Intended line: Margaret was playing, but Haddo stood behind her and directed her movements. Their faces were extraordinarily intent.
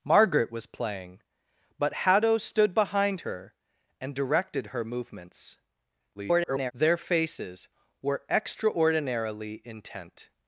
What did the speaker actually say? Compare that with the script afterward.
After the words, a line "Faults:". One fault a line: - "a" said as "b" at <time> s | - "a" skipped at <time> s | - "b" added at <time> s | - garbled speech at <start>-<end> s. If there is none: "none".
Margaret was playing, but Haddo stood behind her and directed her movements. [garbled] Their faces were extraordinarily intent.
Faults:
- garbled speech at 6.1-6.7 s